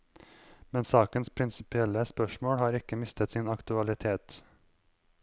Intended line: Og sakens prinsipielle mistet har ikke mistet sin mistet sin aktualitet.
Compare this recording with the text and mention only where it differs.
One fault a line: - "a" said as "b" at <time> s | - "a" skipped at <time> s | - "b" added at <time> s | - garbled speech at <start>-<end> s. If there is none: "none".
- "Og" said as "Men" at 0.7 s
- "mistet" said as "spørsmål" at 2.0 s
- "mistet sin" skipped at 3.5 s